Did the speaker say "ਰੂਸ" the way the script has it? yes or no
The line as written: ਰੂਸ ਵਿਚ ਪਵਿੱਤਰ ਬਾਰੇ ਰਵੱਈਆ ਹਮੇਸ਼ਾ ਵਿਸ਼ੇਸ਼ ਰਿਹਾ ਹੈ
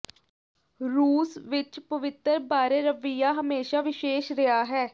yes